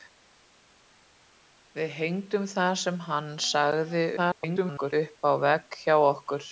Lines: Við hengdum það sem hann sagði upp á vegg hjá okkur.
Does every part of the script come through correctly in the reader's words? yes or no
no